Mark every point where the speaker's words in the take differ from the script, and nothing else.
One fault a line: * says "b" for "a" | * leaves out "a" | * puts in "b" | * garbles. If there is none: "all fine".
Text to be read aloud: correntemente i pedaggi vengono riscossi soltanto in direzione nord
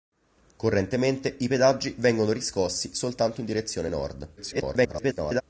* garbles